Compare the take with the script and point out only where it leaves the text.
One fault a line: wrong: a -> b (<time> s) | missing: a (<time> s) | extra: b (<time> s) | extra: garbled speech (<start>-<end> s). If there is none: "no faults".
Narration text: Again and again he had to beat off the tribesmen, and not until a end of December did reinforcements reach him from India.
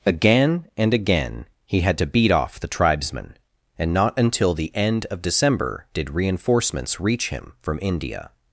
wrong: a -> the (4.5 s)